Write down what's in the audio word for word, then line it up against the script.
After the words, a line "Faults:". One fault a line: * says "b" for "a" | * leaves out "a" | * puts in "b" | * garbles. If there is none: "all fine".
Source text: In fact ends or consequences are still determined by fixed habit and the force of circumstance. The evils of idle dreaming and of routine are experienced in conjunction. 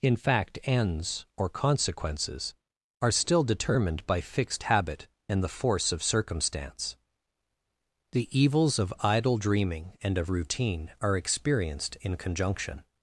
In fact ends or consequences are still determined by fixed habit and the force of circumstance. The evils of idle dreaming and of routine are experienced in conjunction.
Faults:
all fine